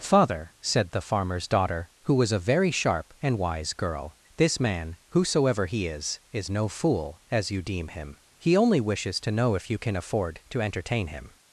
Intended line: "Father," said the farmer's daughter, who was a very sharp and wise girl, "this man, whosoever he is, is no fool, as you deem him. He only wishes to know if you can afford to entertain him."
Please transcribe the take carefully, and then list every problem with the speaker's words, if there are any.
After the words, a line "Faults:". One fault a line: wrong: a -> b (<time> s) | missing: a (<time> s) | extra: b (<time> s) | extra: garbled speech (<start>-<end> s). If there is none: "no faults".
"Father," said the farmer's daughter, who was a very sharp and wise girl, "this man, whosoever he is, is no fool, as you deem him. He only wishes to know if you can afford to entertain him."
Faults:
no faults